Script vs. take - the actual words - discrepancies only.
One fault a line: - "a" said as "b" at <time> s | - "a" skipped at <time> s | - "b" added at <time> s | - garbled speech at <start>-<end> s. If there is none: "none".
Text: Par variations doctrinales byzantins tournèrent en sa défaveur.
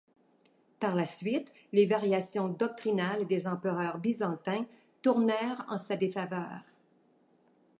- "la suite les" added at 0.9 s
- "des empereurs" added at 3.3 s